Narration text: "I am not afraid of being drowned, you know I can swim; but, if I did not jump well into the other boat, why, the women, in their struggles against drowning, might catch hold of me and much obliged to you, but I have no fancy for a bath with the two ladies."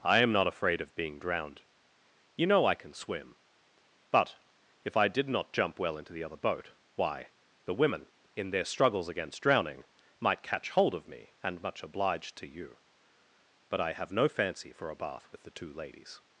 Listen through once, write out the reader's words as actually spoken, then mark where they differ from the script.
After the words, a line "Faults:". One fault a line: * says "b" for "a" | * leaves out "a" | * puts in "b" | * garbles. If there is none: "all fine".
"I am not afraid of being drowned, you know I can swim; but, if I did not jump well into the other boat, why, the women, in their struggles against drowning, might catch hold of me and much obliged to you, but I have no fancy for a bath with the two ladies."
Faults:
all fine